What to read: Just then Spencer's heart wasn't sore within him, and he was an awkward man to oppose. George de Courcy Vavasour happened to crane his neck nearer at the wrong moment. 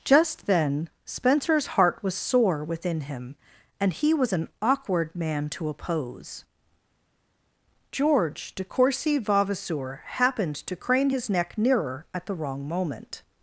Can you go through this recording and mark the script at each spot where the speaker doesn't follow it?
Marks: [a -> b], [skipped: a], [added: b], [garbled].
Just then Spencer's heart [wasn't -> was] sore within him, and he was an awkward man to oppose. George de Courcy Vavasour happened to crane his neck nearer at the wrong moment.